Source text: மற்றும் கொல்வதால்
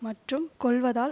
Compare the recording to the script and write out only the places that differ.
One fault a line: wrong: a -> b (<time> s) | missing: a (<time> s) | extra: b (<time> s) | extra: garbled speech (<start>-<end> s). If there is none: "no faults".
no faults